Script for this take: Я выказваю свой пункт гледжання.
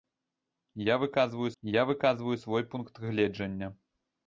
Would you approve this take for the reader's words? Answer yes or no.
no